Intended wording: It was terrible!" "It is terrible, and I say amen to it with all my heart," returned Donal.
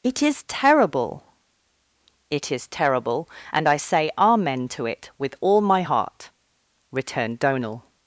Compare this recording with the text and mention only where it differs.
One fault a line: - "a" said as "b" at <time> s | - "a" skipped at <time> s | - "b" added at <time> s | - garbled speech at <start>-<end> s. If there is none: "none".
- "was" said as "is" at 0.2 s